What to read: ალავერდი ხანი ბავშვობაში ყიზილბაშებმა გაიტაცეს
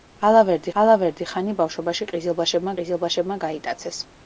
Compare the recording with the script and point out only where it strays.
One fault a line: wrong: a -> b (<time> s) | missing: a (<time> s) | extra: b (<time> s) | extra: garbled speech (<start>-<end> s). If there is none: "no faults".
extra: ალავერდი (0.8 s)
extra: ყიზილბაშებმა (2.8 s)